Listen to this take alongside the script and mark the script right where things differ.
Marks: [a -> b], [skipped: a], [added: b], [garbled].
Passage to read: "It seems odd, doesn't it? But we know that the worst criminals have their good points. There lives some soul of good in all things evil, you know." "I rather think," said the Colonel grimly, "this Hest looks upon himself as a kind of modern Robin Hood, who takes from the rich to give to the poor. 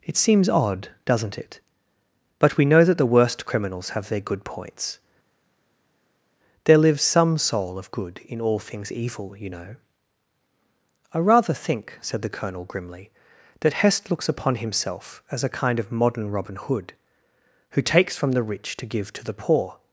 "It seems odd, doesn't it? But we know that the worst criminals have their good points. There lives some soul of good in all things evil, you know." "I rather think," said the Colonel grimly, ["this -> that] Hest looks upon himself as a kind of modern Robin Hood, who takes from the rich to give to the poor.